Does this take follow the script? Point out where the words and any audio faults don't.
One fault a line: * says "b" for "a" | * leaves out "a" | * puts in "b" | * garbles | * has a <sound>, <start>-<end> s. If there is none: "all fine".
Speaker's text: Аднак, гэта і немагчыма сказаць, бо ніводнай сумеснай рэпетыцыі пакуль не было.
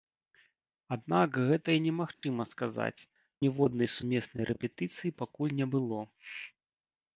* has a dropout, 2.1-2.2 s
* leaves out "бо"